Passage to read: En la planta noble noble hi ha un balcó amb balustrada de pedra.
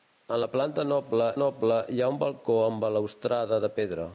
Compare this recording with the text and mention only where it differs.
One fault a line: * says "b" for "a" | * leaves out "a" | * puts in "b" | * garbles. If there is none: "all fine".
all fine